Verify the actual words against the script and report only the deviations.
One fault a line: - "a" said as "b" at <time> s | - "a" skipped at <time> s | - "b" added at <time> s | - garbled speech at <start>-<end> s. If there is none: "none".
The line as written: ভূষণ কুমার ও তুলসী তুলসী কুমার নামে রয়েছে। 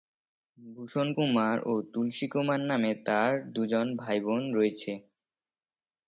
- "তুলসী" skipped at 2.3 s
- "তার দু'জন ভাইবোন" added at 3.1 s